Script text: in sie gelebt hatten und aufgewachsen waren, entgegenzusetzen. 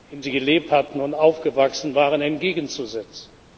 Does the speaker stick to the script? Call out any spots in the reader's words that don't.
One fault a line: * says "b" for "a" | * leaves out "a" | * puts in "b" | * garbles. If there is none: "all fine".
all fine